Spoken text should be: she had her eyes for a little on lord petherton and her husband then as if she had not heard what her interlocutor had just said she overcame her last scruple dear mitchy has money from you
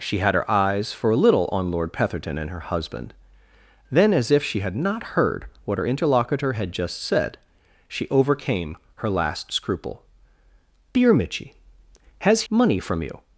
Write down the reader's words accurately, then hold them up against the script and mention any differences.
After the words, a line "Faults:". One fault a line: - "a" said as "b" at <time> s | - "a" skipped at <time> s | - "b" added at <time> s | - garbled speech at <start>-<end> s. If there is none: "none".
she had her eyes for a little on lord petherton and her husband then as if she had not heard what her interlocutor had just said she overcame her last scruple dear mitchy has money from you
Faults:
none